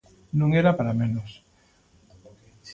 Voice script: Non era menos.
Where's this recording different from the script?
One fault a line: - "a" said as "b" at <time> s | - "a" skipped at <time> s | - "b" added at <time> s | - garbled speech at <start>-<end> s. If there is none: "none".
- "para" added at 0.8 s